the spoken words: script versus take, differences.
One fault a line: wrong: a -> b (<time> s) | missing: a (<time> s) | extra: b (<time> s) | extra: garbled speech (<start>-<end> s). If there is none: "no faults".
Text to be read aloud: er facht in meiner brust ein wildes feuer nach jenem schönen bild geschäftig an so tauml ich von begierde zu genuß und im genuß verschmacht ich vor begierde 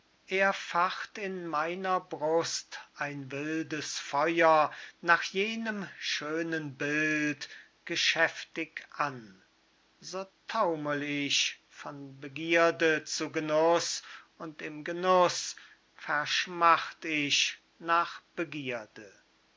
wrong: vor -> nach (17.8 s)